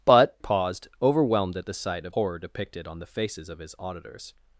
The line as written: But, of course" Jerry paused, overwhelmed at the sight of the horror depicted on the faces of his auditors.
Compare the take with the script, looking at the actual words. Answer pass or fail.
fail